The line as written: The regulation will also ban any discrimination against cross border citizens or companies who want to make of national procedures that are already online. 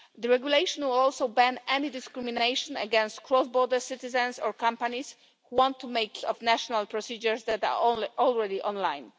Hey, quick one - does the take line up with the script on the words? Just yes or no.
yes